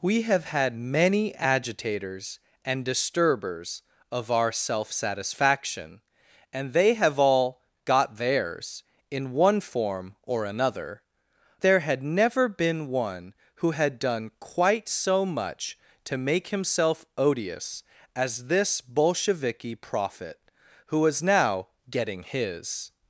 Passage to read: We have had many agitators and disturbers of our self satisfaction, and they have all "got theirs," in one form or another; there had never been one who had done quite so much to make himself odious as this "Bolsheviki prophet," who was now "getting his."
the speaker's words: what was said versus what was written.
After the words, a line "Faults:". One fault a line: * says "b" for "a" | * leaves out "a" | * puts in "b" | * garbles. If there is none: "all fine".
We have had many agitators and disturbers of our self satisfaction, and they have all "got theirs," in one form or another; there had never been one who had done quite so much to make himself odious as this "Bolsheviki prophet," who was now "getting his."
Faults:
all fine